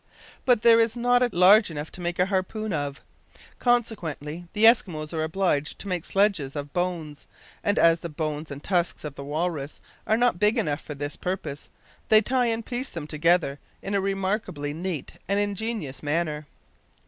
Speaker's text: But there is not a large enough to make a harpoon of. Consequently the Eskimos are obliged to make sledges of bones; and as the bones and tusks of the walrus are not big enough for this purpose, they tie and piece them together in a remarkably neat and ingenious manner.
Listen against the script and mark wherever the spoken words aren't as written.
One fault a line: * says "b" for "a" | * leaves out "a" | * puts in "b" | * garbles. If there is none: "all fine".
all fine